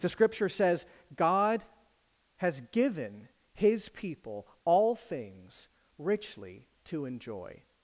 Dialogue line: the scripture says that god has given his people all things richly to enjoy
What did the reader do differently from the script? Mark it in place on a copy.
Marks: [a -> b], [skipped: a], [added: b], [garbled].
the scripture says [skipped: that] god has given his people all things richly to enjoy